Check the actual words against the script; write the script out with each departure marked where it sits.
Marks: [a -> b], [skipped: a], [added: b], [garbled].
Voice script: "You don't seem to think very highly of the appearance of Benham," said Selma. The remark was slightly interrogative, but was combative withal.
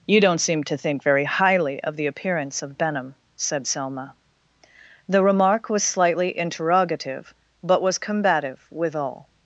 "You don't seem to think very highly of the appearance of Benham," said Selma. The remark was slightly interrogative, but was combative withal.